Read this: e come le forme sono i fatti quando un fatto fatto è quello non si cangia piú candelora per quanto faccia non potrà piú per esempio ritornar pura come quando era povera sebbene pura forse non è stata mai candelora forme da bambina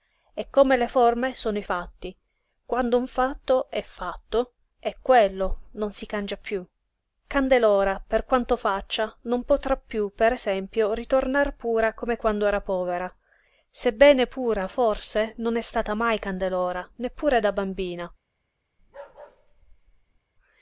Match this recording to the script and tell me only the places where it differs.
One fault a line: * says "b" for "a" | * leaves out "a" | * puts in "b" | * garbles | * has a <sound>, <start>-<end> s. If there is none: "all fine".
* puts in "è"
* says "neppure" for "forme"
* has a bark, 18.8-20.2 s